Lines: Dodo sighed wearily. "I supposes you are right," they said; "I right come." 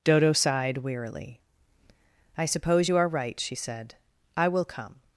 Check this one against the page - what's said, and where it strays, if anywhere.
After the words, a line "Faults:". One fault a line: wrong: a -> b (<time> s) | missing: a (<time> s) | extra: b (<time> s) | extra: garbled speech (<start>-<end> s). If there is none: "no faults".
Dodo sighed wearily. "I suppose you are right," she said; "I will come."
Faults:
wrong: supposes -> suppose (2.5 s)
wrong: they -> she (3.4 s)
wrong: right -> will (4.5 s)